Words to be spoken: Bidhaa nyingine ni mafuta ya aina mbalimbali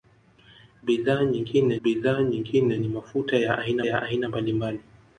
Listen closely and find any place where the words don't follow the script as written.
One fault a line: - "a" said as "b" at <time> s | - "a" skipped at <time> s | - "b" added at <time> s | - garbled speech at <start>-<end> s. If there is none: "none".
- "bidhaa nyingine" added at 1.8 s
- "ya aina" added at 3.8 s